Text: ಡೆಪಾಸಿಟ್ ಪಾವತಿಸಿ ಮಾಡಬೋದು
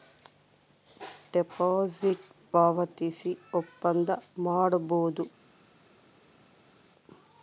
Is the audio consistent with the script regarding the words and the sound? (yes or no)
no